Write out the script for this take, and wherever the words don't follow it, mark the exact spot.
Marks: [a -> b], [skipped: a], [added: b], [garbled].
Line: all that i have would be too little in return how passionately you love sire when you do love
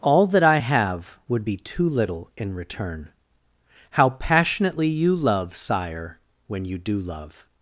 all that i have would be too little in return how passionately you love sire when you do love